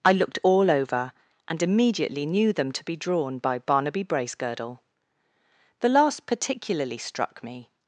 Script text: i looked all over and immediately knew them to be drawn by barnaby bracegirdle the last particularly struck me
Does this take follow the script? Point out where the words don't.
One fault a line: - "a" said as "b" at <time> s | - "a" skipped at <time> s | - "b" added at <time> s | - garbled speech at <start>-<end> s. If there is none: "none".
none